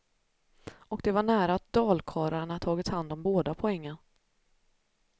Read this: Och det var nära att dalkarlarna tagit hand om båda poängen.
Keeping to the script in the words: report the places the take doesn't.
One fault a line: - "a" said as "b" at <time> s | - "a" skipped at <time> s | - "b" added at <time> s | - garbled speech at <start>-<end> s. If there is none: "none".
none